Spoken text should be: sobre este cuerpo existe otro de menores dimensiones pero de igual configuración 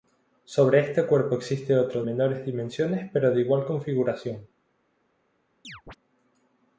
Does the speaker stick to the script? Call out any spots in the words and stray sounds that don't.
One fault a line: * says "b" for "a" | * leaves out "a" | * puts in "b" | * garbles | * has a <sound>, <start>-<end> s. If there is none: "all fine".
* leaves out "de"
* has a chirp, 5.6-6.0 s